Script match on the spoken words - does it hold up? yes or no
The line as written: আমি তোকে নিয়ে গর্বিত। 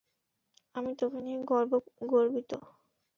yes